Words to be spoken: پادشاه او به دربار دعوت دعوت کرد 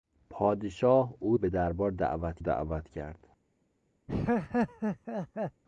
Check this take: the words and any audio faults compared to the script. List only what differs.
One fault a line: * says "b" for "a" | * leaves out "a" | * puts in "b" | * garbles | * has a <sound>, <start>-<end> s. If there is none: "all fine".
* has a laugh, 4.1-5.6 s